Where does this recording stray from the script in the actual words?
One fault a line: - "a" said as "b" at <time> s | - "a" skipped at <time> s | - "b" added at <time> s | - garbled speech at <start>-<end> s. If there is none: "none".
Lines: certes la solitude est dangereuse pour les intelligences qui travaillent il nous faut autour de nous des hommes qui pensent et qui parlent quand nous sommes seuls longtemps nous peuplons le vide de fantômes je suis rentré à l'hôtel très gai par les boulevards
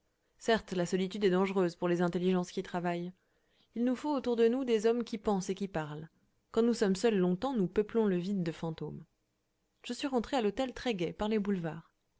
none